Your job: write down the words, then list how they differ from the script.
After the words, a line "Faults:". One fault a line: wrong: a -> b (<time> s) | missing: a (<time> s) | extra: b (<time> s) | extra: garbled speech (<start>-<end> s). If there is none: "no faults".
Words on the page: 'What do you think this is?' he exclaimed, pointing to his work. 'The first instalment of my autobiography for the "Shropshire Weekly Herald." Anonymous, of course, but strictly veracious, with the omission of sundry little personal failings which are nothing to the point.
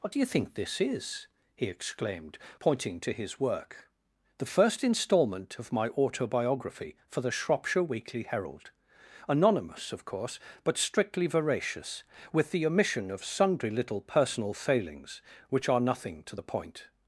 'What do you think this is?' he exclaimed, pointing to his work. 'The first instalment of my autobiography for the "Shropshire Weekly Herald." Anonymous, of course, but strictly veracious, with the omission of sundry little personal failings which are nothing to the point.
Faults:
no faults